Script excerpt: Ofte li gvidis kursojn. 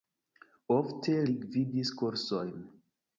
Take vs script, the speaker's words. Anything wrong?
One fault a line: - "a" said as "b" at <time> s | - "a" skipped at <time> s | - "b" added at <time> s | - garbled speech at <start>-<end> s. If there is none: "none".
none